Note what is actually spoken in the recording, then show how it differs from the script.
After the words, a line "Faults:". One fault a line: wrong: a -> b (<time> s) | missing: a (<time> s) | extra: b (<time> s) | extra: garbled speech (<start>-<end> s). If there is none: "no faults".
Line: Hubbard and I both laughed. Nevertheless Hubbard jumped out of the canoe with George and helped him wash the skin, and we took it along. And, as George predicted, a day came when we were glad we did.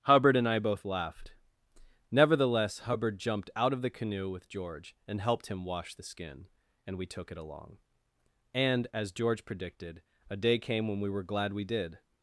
Hubbard and I both laughed. Nevertheless Hubbard jumped out of the canoe with George and helped him wash the skin, and we took it along. And, as George predicted, a day came when we were glad we did.
Faults:
no faults